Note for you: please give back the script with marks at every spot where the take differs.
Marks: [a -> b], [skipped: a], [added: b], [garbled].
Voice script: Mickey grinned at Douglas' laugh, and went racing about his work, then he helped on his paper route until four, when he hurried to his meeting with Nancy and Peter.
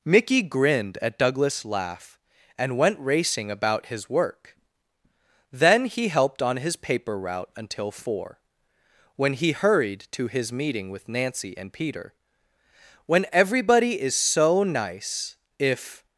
Mickey grinned at Douglas' laugh, and went racing about his work, then he helped on his paper route until four, when he hurried to his meeting with Nancy and Peter. [added: When everybody is so nice if]